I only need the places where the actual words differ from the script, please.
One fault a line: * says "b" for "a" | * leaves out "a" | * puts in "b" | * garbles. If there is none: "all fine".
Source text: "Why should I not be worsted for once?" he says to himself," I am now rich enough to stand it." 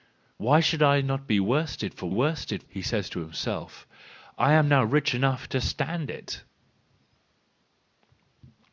* says "worsted" for "once"